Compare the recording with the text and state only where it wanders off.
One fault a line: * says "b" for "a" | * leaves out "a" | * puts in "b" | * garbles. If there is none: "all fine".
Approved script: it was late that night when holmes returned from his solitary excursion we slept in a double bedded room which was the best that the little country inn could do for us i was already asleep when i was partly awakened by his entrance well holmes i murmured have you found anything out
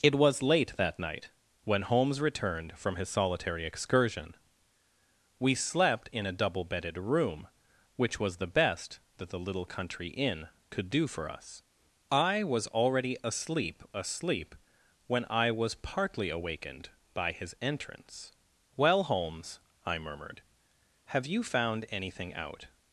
* puts in "asleep"